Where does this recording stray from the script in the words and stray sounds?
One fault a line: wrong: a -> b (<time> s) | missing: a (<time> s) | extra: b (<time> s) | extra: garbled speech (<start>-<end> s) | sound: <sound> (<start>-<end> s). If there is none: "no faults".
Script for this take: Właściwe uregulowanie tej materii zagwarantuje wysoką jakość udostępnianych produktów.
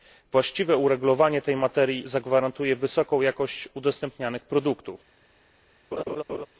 sound: laugh (5.9-6.5 s)